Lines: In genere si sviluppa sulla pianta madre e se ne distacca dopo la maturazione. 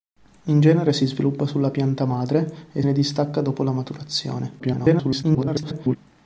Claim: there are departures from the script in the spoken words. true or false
true